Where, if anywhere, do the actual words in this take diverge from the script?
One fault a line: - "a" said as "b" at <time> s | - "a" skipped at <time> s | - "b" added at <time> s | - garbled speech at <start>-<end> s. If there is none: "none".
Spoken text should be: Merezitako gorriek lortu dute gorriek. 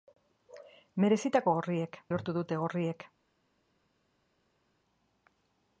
none